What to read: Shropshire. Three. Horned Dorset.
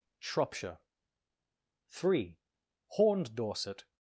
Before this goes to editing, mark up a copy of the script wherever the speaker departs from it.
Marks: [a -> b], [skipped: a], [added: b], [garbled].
Shropshire. Three. Horned Dorset.